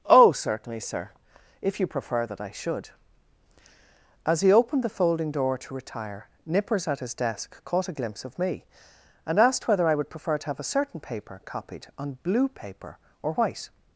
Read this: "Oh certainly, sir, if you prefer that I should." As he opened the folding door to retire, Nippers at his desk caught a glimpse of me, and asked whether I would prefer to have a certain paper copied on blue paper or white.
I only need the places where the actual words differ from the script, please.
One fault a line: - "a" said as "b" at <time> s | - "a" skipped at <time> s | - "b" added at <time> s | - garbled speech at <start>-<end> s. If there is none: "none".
none